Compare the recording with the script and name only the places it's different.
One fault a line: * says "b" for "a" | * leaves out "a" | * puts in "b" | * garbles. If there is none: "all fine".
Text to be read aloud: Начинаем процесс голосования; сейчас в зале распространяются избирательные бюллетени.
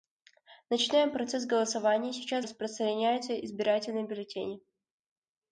* leaves out "зале"